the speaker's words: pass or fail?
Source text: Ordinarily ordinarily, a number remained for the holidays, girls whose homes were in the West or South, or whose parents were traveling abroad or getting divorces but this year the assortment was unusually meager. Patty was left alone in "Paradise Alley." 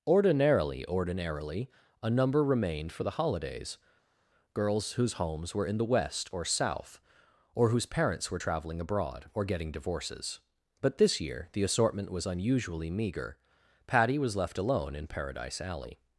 pass